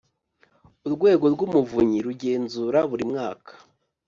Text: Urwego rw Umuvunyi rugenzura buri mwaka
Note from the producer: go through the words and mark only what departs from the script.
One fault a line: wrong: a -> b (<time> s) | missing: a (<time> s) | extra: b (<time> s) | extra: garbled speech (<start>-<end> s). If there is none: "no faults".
no faults